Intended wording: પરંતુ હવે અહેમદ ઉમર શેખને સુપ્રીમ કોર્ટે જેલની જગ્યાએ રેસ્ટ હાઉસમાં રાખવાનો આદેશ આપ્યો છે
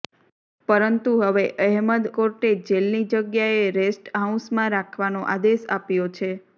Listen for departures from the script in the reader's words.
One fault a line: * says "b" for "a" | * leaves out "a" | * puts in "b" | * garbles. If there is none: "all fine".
* leaves out "ઉમર શેખને સુપ્રીમ"